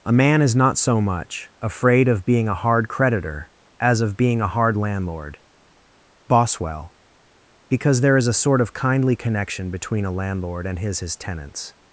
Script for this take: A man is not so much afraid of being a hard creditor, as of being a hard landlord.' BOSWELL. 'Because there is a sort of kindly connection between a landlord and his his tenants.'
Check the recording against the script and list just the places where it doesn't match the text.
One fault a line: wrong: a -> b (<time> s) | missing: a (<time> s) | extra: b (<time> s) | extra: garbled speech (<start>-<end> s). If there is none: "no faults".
no faults